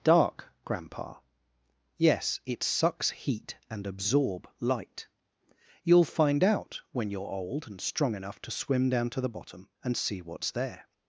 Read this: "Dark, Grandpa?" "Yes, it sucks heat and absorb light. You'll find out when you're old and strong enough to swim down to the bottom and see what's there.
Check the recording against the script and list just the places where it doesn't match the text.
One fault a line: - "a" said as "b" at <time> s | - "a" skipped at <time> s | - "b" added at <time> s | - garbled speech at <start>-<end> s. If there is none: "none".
none